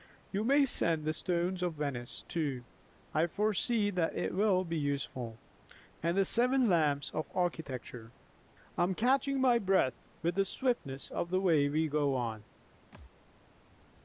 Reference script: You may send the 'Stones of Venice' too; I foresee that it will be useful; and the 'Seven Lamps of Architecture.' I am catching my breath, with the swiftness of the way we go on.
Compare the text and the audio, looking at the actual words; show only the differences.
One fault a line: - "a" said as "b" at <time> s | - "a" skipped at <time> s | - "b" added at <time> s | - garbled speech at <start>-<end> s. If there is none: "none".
none